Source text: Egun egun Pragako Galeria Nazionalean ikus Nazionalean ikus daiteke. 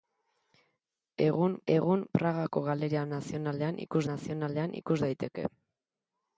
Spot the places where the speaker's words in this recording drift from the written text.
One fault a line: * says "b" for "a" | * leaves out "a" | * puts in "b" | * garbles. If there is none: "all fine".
all fine